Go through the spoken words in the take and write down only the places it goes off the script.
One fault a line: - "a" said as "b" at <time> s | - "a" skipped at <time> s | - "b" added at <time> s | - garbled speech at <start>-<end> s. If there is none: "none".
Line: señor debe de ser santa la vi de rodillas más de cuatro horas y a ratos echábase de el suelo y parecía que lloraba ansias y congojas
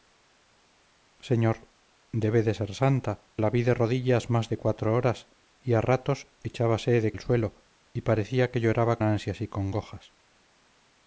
none